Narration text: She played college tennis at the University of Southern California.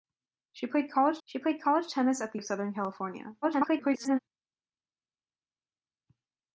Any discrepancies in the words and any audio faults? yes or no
yes